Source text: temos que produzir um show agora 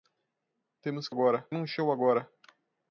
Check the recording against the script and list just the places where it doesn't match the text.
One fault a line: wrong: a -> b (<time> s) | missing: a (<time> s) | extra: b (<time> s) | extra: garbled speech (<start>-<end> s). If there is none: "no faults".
wrong: produzir -> agora (1.1 s)